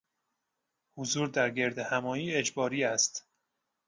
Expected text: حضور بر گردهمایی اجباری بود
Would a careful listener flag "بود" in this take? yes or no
yes